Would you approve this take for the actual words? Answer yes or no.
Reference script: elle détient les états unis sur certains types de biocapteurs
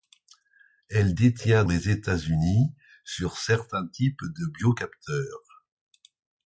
yes